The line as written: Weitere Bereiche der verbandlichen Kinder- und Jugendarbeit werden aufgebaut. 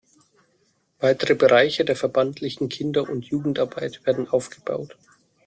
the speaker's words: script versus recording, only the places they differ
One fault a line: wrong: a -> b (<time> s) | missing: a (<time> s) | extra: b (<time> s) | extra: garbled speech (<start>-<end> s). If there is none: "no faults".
no faults